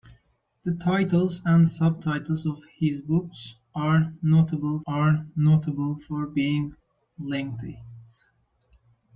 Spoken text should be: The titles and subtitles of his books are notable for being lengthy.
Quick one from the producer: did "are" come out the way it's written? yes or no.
yes